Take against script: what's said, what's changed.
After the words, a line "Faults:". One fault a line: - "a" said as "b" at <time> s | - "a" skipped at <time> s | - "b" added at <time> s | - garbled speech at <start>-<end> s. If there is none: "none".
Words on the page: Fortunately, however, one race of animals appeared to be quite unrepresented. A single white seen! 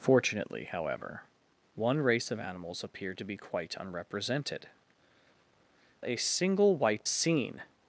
Fortunately, however, one race of animals appeared to be quite unrepresented. A single white seen!
Faults:
none